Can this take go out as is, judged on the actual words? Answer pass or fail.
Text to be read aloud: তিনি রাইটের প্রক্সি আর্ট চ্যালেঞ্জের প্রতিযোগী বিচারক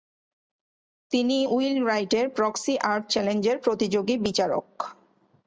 fail